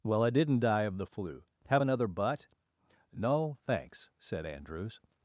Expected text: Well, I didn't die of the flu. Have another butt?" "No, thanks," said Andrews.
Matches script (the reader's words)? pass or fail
pass